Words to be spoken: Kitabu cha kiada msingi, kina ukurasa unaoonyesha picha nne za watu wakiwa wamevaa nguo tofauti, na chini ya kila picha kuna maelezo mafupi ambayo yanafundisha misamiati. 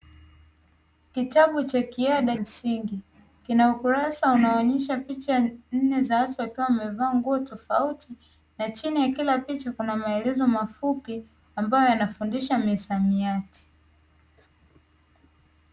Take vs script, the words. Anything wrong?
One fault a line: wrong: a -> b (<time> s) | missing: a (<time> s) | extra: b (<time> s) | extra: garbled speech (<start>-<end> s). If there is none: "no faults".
no faults